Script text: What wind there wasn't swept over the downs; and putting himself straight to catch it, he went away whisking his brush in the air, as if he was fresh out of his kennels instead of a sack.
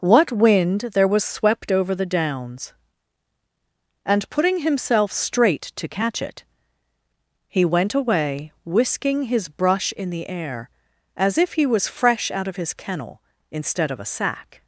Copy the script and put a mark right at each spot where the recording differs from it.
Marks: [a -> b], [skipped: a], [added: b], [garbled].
What wind there [wasn't -> was] swept over the downs; and putting himself straight to catch it, he went away whisking his brush in the air, as if he was fresh out of his [kennels -> kennel] instead of a sack.